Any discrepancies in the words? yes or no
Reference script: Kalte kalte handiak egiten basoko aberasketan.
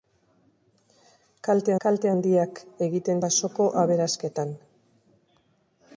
no